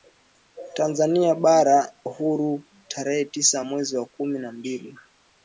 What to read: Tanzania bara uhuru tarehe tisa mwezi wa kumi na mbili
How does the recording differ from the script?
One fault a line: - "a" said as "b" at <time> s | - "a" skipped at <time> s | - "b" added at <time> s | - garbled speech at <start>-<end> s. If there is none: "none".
none